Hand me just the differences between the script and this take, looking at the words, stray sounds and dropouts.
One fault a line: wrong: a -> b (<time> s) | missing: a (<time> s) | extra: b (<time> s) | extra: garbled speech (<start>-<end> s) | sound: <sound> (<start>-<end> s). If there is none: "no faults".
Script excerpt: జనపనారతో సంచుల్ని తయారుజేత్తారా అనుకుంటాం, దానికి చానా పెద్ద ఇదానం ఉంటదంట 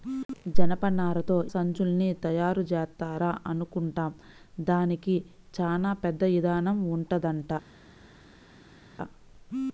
no faults